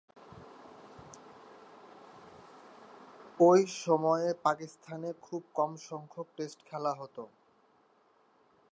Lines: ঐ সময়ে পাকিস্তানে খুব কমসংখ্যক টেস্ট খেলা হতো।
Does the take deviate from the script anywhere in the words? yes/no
no